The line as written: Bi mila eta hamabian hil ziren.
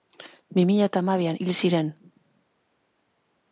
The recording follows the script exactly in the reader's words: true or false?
true